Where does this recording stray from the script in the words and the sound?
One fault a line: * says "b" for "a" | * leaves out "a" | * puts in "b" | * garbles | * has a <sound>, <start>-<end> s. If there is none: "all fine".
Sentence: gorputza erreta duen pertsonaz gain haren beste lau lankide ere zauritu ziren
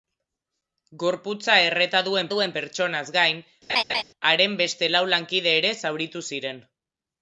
* puts in "duen"
* has a laugh, 3.7-4.0 s